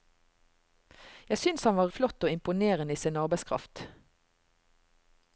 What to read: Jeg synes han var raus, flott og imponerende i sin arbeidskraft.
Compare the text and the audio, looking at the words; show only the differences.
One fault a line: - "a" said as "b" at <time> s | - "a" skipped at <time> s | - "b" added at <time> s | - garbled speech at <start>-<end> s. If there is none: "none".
- "raus" skipped at 1.9 s